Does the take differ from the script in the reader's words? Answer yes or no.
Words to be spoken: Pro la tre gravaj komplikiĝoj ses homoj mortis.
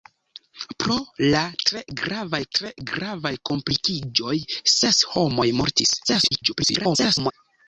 yes